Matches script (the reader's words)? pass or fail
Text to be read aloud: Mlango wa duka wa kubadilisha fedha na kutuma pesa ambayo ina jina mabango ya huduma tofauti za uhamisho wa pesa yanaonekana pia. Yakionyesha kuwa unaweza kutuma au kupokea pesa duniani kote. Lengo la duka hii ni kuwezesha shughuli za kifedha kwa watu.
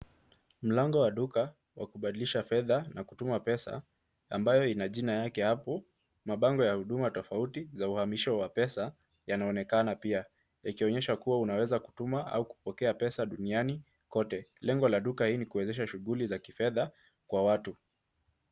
fail